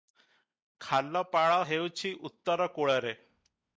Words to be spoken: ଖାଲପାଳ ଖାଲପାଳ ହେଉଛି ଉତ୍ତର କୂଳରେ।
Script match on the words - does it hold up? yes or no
no